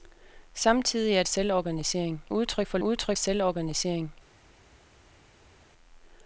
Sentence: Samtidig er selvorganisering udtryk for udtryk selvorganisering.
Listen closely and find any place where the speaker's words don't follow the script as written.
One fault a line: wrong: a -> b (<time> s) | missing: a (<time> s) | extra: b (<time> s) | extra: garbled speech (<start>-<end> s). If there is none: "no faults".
no faults